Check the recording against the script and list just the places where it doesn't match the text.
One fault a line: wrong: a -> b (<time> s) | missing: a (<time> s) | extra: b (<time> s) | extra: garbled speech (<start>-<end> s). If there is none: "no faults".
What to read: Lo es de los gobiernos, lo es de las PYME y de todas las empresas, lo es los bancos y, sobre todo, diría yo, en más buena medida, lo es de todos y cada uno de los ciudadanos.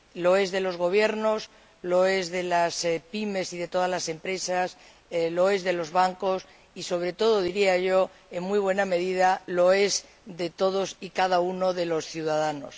extra: de (5.6 s)
wrong: más -> muy (8.4 s)